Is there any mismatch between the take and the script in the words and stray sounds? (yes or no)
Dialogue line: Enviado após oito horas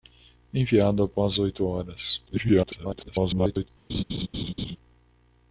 yes